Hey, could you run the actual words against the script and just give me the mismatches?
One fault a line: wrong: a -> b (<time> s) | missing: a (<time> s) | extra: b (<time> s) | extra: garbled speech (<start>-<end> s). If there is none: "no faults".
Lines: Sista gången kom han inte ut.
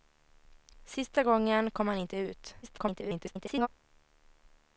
extra: garbled speech (2.6-3.7 s)